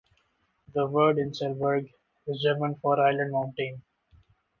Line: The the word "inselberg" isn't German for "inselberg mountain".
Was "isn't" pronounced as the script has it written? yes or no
no